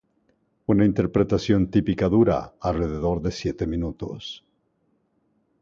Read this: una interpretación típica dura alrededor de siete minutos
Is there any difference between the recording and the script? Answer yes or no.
no